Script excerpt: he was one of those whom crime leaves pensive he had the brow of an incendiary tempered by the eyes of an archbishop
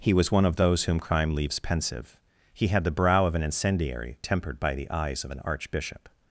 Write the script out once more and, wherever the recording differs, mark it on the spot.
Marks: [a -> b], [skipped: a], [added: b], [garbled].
he was one of those whom crime leaves pensive he had the brow of an incendiary tempered by the eyes of an archbishop